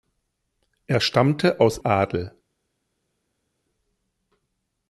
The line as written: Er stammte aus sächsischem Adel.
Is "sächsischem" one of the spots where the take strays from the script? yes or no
yes